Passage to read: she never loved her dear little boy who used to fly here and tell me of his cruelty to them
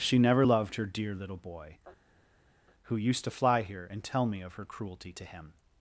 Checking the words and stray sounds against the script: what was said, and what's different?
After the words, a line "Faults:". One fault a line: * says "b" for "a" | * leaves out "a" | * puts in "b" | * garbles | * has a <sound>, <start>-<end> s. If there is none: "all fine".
she never loved her dear little boy who used to fly here and tell me of her cruelty to him
Faults:
* says "her" for "his"
* says "him" for "them"